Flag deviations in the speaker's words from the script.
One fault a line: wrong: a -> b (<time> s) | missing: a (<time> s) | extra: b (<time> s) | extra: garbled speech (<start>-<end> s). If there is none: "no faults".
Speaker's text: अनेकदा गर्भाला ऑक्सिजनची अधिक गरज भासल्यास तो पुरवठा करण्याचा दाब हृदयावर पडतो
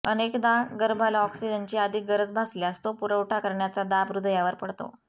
no faults